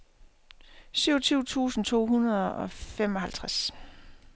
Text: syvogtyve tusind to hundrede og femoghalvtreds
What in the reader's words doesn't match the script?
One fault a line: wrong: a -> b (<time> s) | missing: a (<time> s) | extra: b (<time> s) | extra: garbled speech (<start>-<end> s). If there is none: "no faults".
no faults